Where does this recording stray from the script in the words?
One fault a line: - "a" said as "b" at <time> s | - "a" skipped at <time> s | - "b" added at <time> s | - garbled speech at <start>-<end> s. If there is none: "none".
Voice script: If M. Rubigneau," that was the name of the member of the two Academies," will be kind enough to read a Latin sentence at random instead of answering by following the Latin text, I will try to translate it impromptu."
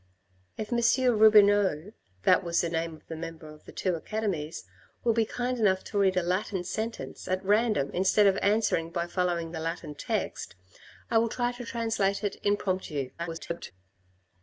- garbled speech at 13.2-13.7 s